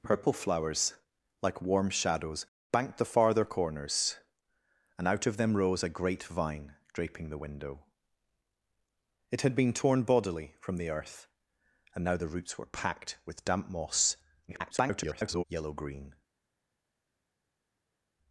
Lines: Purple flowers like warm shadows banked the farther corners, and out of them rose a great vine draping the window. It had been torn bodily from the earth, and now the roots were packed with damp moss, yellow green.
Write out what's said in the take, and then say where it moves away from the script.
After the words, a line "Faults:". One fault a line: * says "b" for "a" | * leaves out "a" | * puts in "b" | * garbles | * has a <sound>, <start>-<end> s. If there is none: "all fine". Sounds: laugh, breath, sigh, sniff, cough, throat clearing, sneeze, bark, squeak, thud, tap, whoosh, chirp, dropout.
Purple flowers like warm shadows banked the farther corners, and out of them rose a great vine draping the window. It had been torn bodily from the earth, and now the roots were packed with damp moss, [garbled] yellow green.
Faults:
* garbles